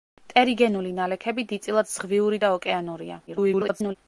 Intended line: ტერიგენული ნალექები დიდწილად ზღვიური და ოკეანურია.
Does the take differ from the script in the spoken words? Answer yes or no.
yes